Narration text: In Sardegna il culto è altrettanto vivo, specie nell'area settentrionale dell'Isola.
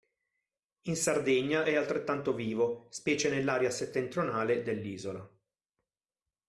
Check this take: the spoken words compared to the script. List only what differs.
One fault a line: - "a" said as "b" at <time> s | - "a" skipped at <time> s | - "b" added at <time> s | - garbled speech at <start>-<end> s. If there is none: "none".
- "il culto" skipped at 1.7 s